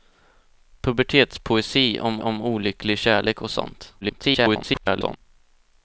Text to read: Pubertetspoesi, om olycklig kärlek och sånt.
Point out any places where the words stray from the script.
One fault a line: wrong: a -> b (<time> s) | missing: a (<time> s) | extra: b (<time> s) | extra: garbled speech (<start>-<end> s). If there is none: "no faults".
extra: om (2.2 s)
extra: garbled speech (4.0-5.2 s)